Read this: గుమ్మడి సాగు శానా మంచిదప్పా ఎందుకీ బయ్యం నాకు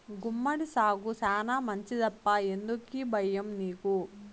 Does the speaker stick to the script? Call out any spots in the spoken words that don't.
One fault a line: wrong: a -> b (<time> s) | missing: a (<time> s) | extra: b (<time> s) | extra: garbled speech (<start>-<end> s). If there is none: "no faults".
wrong: నాకు -> నీకు (3.6 s)